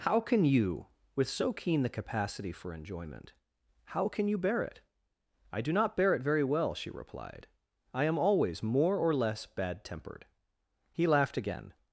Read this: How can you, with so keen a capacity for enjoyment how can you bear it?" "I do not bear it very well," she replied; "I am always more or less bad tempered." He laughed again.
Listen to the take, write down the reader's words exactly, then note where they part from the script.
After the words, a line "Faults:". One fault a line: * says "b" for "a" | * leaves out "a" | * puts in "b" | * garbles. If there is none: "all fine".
How can you, with so keen the capacity for enjoyment how can you bear it?" "I do not bear it very well," she replied; "I am always more or less bad tempered." He laughed again.
Faults:
* says "the" for "a"